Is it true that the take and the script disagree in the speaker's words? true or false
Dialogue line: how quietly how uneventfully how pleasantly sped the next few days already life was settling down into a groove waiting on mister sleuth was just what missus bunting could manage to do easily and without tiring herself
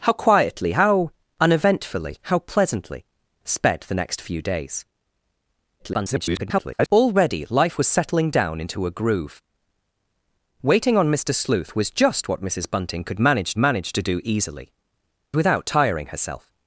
true